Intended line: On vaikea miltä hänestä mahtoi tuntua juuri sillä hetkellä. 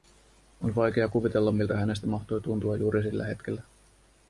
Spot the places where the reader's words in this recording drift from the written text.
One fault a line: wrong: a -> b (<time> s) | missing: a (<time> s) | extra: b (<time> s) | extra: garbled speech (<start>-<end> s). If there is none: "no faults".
extra: kuvitella (1.1 s)